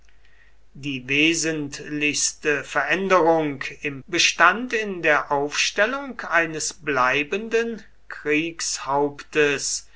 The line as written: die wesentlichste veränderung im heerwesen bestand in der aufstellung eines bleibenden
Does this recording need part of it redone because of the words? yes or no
yes